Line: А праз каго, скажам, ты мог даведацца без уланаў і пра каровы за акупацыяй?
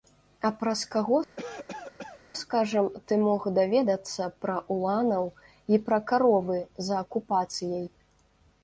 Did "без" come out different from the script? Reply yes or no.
yes